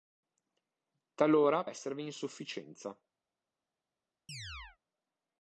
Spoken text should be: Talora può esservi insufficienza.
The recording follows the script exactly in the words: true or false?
false